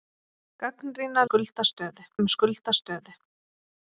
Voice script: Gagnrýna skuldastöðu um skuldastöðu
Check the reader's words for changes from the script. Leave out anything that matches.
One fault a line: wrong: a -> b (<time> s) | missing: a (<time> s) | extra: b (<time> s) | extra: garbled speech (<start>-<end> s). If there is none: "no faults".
no faults